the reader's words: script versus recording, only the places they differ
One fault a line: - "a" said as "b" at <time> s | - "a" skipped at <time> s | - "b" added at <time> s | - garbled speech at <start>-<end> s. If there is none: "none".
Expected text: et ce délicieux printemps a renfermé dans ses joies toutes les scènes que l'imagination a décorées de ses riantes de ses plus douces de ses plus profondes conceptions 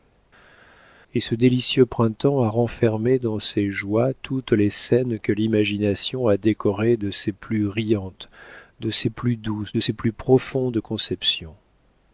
- "plus" added at 7.3 s